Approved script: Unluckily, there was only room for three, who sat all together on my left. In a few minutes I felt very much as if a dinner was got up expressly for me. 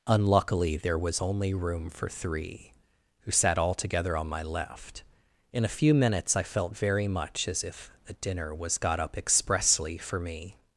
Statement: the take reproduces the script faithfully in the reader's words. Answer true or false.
true